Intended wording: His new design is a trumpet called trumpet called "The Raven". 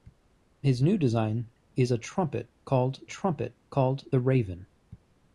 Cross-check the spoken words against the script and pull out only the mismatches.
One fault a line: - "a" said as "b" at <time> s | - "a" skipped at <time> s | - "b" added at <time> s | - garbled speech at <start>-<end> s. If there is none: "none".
none